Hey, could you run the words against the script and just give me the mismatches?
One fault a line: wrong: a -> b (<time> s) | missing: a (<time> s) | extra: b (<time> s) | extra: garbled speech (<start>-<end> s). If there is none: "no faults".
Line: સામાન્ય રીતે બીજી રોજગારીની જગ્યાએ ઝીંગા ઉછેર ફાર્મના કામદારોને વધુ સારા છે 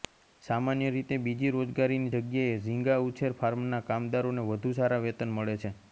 extra: વેતન મળે (5.1 s)